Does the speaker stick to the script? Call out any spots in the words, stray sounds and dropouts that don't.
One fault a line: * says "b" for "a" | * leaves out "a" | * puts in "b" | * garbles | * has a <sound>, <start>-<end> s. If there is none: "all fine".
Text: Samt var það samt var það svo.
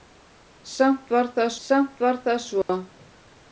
* has a dropout, 2.6-2.7 s